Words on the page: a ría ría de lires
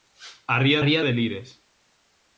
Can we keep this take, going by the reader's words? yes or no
yes